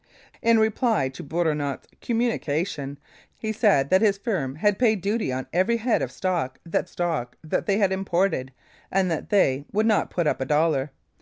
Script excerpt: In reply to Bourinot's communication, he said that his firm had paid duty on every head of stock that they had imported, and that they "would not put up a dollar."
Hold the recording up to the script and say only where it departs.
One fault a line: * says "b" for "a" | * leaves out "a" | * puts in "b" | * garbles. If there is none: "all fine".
* puts in "stock that"